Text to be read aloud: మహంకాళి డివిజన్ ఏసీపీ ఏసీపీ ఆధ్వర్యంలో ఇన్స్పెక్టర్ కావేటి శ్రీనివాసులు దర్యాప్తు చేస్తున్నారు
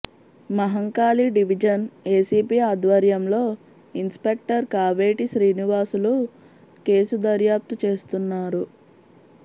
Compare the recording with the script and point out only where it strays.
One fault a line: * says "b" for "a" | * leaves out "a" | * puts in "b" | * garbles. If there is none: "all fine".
* leaves out "ఏసీపీ"
* puts in "కేసు"